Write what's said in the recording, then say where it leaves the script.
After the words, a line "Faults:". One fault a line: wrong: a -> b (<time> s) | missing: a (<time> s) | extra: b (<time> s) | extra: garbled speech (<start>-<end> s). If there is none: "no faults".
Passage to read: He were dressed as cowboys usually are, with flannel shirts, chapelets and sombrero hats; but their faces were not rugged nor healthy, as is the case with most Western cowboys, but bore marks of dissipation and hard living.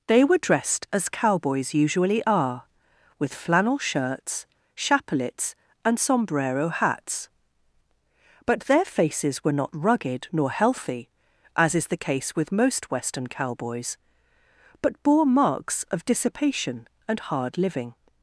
They were dressed as cowboys usually are, with flannel shirts, chapelets and sombrero hats; but their faces were not rugged nor healthy, as is the case with most Western cowboys, but bore marks of dissipation and hard living.
Faults:
wrong: He -> They (0.1 s)